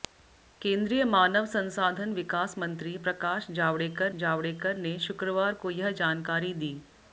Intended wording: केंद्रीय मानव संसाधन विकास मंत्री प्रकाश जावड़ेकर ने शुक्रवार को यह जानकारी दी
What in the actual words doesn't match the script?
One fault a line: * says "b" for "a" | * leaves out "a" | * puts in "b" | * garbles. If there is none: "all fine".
* puts in "जावड़ेकर"